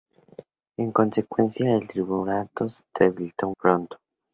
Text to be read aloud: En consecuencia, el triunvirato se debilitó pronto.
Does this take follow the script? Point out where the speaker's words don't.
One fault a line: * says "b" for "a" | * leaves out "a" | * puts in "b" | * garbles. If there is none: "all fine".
all fine